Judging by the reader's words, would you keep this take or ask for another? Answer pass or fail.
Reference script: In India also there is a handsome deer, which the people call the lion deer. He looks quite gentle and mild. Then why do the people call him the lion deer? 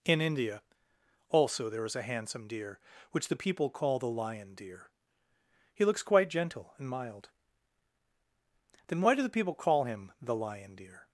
pass